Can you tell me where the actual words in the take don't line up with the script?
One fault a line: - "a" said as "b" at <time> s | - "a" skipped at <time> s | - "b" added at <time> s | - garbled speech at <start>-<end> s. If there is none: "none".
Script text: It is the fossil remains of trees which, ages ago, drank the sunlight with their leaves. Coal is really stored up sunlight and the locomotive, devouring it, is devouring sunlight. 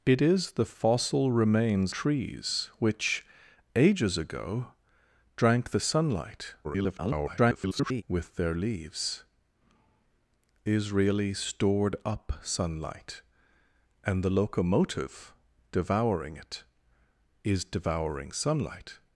- "of" skipped at 1.9 s
- garbled speech at 6.6-8.0 s
- "Coal" skipped at 9.2 s